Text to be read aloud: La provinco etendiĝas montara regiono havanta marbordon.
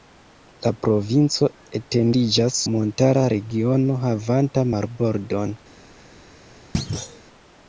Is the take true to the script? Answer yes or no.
yes